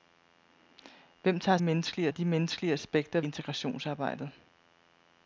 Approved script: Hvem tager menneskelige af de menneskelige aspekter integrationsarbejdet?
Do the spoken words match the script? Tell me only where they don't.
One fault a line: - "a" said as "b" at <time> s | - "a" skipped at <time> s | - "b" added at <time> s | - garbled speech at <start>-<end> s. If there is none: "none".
none